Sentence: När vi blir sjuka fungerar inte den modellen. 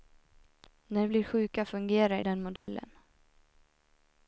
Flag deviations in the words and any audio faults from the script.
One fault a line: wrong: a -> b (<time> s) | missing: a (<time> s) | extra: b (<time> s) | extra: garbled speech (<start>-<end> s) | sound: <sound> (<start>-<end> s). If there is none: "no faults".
missing: vi (1.1 s)
missing: inte (2.2 s)
sound: dropout (2.6-2.7 s)